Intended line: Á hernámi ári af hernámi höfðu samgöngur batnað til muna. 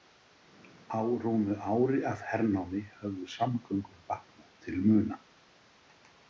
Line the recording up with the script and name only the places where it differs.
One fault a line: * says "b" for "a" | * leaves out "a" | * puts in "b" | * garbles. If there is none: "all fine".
* says "rúmu" for "hernámi"